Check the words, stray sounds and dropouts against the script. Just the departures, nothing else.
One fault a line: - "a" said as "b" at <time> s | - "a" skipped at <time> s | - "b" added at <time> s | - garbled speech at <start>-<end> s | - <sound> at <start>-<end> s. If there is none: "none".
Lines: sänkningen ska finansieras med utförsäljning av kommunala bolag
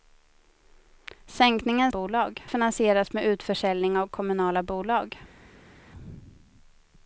- "ska" said as "bolag" at 1.9 s